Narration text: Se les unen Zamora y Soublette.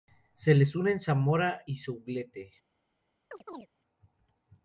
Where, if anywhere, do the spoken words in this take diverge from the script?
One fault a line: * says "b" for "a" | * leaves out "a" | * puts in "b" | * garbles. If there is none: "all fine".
all fine